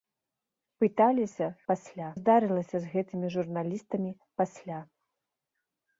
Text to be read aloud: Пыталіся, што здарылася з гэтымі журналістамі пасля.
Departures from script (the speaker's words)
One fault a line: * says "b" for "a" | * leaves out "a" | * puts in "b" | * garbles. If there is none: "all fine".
* says "пасля" for "што"